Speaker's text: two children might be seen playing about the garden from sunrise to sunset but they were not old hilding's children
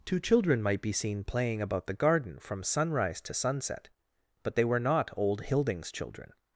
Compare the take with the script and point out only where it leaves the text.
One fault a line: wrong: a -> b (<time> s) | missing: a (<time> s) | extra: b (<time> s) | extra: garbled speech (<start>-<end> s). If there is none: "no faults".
no faults